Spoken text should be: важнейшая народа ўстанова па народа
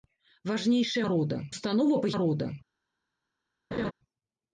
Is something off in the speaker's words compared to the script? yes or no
no